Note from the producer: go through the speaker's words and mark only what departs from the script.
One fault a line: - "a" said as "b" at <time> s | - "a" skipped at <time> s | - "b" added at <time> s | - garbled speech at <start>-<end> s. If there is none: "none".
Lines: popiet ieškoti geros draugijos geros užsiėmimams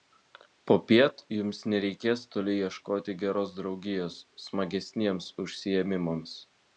- "jums nereikės toli" added at 1.4 s
- "geros" said as "smagesniems" at 4.5 s